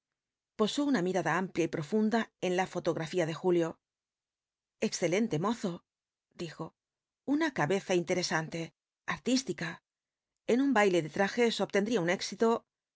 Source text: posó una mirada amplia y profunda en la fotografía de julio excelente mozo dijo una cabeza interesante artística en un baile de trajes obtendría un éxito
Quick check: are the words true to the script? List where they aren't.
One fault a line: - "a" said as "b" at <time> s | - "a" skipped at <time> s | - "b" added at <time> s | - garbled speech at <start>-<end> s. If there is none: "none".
none